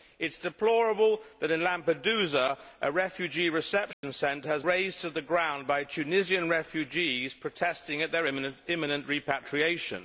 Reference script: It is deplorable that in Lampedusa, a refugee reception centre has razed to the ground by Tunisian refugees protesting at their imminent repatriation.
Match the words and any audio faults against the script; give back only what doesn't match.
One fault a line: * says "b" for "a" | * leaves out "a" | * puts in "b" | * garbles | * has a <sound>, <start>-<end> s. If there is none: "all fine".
* has a dropout, 3.9-4.0 s